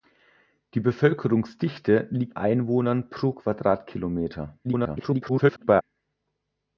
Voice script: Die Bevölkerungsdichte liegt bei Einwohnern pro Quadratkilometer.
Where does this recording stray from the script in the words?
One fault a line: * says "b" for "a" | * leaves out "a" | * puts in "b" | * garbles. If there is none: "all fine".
* leaves out "bei"
* garbles